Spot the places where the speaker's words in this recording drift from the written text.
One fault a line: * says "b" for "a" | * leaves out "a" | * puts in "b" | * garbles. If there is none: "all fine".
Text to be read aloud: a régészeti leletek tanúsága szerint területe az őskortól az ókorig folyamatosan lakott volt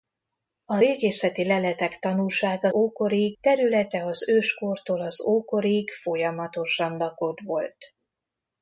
* says "ókorig" for "szerint"